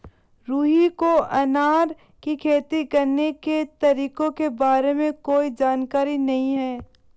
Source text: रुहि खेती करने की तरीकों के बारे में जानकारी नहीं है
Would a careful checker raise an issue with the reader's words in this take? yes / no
yes